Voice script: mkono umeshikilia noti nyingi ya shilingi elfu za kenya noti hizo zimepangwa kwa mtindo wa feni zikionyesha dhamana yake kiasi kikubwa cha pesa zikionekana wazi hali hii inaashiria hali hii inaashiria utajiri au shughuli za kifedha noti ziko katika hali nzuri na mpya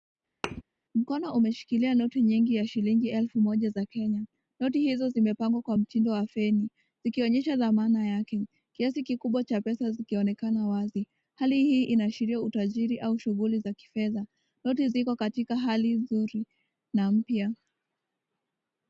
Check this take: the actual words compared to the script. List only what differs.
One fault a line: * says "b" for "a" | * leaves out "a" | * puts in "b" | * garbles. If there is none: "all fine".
* puts in "moja"
* leaves out "hali hii inaashiria"